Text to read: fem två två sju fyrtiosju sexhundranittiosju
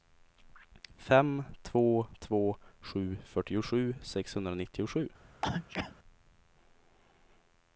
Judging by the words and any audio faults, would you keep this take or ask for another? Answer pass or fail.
fail